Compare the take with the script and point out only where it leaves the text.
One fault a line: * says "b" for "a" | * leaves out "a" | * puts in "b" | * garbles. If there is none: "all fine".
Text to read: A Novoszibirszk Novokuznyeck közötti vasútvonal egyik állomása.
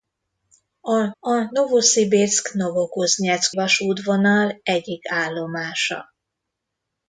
* puts in "a"
* leaves out "közötti"